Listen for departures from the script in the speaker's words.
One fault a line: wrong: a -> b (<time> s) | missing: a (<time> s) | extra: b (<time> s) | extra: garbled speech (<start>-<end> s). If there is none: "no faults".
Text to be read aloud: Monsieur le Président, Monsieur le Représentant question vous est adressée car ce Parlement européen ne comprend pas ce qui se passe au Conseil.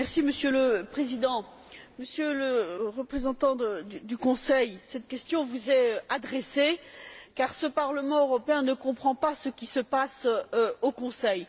extra: du Conseil cette (3.6 s)